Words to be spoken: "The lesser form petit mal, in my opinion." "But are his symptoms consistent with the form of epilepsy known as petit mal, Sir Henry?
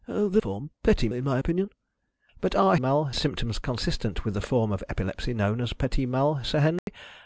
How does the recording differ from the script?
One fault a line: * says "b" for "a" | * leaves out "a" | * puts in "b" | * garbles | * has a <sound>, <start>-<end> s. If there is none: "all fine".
* leaves out "lesser"
* leaves out "mal"
* says "mal" for "his"
* has a dropout, 6.8-6.9 s